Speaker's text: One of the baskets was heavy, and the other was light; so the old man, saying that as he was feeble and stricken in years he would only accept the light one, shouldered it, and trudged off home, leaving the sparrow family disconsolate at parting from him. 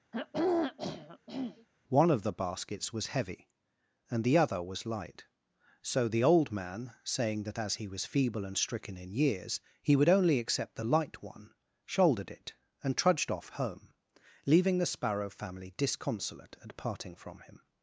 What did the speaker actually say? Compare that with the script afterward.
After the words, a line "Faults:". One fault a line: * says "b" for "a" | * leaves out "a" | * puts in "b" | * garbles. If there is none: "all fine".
One of the baskets was heavy, and the other was light; so the old man, saying that as he was feeble and stricken in years he would only accept the light one, shouldered it, and trudged off home, leaving the sparrow family disconsolate at parting from him.
Faults:
all fine